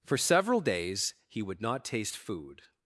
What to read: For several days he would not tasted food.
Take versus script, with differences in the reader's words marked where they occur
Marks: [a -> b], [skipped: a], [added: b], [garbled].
For several days he would not [tasted -> taste] food.